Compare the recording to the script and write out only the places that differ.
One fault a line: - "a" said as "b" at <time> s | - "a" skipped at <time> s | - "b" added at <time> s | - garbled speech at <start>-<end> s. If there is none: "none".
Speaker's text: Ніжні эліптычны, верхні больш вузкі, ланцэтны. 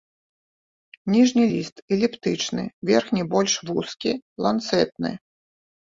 - "ліст" added at 1.5 s